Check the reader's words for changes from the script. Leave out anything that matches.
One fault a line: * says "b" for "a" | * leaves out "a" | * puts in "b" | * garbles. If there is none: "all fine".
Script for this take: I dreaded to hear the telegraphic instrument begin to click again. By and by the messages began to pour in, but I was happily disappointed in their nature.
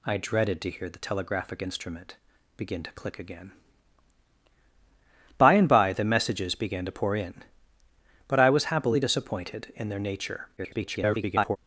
* garbles